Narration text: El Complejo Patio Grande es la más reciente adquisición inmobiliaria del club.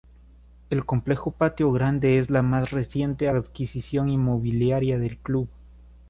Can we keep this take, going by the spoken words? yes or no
yes